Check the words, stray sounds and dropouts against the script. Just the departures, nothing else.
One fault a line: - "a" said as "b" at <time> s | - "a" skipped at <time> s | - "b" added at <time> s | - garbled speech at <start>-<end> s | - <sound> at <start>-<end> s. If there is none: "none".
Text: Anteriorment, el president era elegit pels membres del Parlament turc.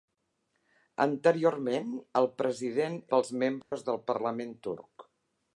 - "era elegit" skipped at 3.0 s
- dropout at 3.6-3.7 s